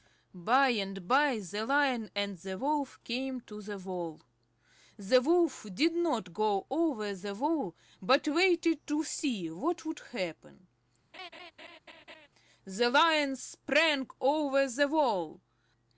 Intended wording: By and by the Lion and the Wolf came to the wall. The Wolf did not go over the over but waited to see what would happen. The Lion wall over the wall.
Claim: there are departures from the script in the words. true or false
true